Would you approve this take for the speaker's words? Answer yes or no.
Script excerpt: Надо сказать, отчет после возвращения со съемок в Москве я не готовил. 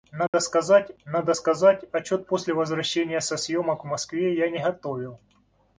no